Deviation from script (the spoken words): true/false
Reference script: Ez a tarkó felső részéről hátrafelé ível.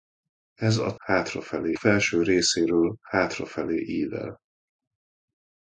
true